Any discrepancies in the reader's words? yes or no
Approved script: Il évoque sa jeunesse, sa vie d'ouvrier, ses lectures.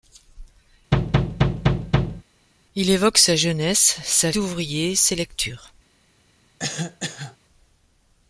yes